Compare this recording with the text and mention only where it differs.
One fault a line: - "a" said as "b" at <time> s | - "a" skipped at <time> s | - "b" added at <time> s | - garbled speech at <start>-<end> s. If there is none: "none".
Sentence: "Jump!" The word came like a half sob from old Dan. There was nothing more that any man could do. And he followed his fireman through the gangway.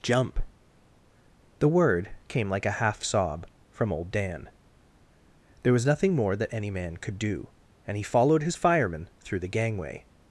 none